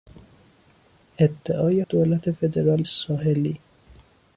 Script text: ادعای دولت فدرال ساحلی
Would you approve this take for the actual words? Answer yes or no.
yes